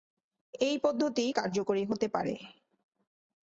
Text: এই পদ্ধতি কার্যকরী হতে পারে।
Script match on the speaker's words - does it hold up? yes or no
yes